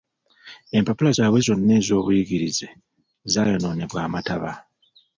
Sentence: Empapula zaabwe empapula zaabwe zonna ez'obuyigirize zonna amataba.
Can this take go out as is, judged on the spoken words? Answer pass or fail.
fail